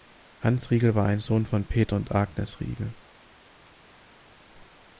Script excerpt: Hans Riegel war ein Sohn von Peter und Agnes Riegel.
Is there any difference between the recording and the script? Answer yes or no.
no